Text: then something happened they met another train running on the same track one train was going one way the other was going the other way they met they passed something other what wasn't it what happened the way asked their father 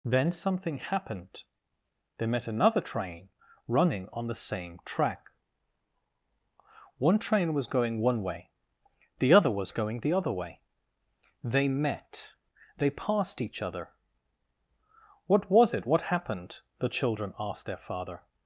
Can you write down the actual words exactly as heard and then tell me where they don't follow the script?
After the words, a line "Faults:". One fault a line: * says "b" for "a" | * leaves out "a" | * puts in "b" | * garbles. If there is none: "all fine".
then something happened they met another train running on the same track one train was going one way the other was going the other way they met they passed each other what was it what happened the children asked their father
Faults:
* says "each" for "something"
* says "was" for "wasn't"
* says "children" for "way"